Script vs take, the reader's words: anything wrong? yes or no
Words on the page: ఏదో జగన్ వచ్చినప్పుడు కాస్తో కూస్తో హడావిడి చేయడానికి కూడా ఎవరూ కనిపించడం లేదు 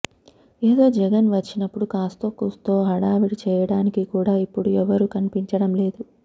yes